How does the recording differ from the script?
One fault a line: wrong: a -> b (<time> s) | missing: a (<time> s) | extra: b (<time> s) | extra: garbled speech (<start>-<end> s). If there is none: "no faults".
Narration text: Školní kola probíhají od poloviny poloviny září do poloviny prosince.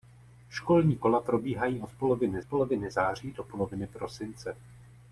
no faults